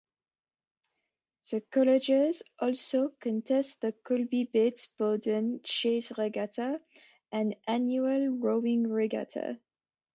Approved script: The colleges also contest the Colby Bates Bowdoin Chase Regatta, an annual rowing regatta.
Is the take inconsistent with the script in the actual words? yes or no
no